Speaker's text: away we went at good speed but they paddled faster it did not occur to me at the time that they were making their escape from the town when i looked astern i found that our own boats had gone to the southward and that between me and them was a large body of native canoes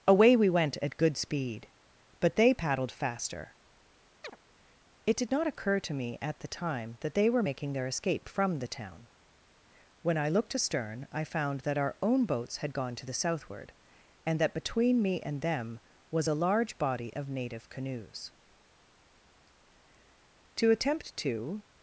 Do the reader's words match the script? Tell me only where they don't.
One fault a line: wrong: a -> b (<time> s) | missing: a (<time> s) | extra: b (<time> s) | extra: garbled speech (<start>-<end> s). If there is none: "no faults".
extra: to attempt to (20.6 s)